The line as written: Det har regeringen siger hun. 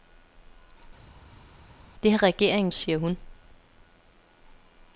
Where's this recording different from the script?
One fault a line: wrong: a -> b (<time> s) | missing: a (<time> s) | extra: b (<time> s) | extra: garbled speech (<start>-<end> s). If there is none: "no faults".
no faults